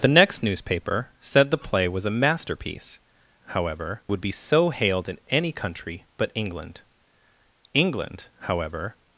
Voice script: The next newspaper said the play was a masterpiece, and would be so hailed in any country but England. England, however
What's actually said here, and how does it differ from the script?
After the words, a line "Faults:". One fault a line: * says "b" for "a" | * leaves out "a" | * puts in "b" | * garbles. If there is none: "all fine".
The next newspaper said the play was a masterpiece, however would be so hailed in any country but England. England, however
Faults:
* says "however" for "and"